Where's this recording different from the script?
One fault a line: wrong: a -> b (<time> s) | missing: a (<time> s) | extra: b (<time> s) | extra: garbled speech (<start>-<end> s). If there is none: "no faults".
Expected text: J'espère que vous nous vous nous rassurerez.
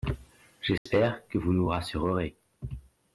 missing: vous nous (1.7 s)